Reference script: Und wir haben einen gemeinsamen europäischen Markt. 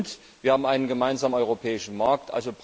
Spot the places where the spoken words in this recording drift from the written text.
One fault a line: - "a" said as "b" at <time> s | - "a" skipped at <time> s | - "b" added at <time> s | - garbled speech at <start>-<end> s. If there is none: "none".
none